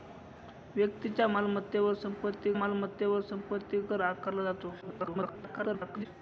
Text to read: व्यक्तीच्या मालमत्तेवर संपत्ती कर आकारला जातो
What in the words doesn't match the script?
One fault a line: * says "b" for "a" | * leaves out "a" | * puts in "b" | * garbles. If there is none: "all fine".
* puts in "मालमत्तेवर संपत्ती"
* garbles